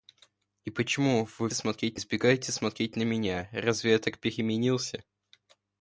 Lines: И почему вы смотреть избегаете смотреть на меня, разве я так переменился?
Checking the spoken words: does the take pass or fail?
pass